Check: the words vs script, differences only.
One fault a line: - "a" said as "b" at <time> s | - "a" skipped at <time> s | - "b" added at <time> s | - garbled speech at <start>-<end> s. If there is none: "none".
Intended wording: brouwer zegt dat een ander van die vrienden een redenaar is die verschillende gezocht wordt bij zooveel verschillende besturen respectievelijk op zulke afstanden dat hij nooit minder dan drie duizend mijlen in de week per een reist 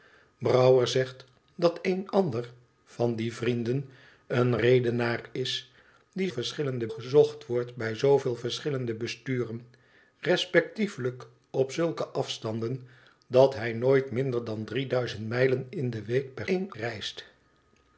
none